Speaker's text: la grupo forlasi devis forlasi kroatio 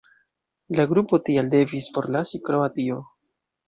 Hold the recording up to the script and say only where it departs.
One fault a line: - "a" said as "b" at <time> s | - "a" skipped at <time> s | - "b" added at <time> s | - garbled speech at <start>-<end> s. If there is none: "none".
- "forlasi" said as "tial" at 1.3 s